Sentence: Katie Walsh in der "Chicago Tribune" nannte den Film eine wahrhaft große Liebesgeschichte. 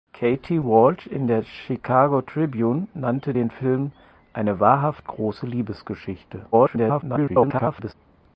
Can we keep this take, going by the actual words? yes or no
no